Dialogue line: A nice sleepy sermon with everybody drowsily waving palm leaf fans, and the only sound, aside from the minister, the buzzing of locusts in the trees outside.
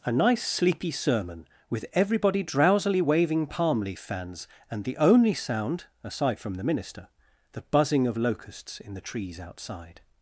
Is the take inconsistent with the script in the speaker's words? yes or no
no